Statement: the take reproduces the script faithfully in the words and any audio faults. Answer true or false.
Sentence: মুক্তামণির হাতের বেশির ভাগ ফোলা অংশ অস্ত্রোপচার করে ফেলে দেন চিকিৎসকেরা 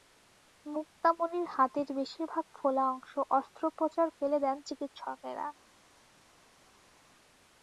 false